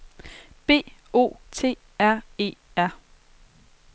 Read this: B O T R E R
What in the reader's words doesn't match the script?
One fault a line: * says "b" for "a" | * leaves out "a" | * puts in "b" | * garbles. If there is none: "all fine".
all fine